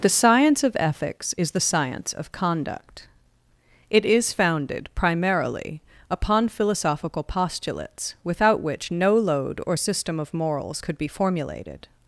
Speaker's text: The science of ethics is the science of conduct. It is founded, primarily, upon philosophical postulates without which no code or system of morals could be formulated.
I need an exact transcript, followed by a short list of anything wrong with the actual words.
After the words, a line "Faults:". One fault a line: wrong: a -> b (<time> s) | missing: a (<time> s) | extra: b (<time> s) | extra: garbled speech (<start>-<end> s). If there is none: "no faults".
The science of ethics is the science of conduct. It is founded, primarily, upon philosophical postulates without which no load or system of morals could be formulated.
Faults:
wrong: code -> load (9.2 s)